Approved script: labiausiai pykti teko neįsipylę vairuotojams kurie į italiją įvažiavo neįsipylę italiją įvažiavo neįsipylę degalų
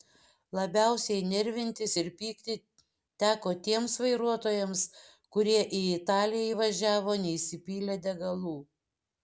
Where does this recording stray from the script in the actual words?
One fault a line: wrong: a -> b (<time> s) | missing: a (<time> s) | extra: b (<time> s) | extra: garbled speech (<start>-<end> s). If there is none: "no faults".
extra: nervintis ir (1.3 s)
wrong: neįsipylę -> tiems (3.7 s)
missing: italiją įvažiavo neįsipylę (8.0 s)